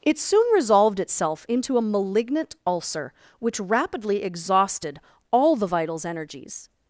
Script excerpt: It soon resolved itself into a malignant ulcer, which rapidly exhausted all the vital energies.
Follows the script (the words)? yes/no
no